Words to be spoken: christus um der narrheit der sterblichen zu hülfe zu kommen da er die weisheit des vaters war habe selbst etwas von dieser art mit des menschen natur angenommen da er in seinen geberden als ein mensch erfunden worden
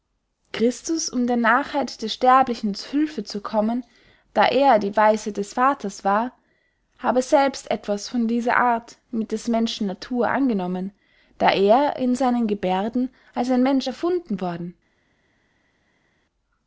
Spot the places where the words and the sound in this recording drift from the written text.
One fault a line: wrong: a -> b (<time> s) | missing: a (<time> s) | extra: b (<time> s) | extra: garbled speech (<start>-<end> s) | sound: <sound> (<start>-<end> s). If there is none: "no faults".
no faults